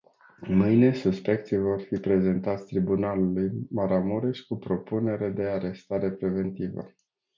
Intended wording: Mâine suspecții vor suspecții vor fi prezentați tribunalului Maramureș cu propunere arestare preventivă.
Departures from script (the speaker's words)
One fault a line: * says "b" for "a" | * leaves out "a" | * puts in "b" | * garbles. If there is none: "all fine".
* leaves out "suspecții vor"
* puts in "de"